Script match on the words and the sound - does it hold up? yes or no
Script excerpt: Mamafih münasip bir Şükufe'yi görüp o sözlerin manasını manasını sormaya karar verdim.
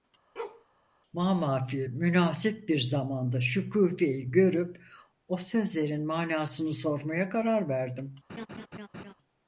no